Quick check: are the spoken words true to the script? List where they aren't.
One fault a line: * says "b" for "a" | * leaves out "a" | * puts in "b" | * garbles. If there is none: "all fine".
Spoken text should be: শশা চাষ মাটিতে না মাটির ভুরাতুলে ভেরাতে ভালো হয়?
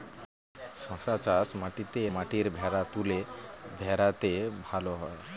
* leaves out "না"